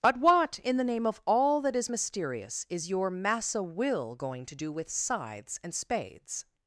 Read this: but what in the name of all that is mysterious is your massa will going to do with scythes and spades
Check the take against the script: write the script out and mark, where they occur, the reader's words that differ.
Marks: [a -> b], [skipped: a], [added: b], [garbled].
but what in the name of all that is mysterious is your massa will going to do with scythes and spades